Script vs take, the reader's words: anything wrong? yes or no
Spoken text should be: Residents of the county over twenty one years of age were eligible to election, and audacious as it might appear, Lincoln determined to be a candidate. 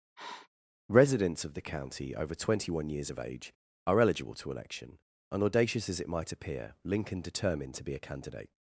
yes